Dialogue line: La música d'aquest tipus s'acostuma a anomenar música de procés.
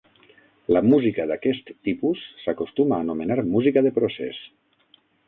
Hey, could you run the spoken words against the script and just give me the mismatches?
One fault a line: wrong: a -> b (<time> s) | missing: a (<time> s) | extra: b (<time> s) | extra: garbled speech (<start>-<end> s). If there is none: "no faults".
no faults